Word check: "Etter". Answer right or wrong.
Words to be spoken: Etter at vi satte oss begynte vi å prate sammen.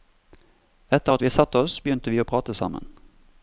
right